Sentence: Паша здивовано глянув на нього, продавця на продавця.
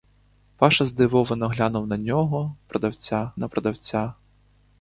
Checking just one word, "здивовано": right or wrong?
right